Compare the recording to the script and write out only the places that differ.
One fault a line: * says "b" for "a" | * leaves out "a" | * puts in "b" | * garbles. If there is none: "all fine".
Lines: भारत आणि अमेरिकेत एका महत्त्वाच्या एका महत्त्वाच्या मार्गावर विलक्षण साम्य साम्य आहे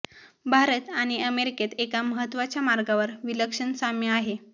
* leaves out "एका महत्त्वाच्या"
* leaves out "साम्य"